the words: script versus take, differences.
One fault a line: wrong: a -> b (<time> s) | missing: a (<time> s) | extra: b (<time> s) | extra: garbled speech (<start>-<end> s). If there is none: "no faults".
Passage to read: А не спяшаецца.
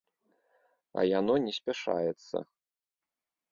extra: яно (1.2 s)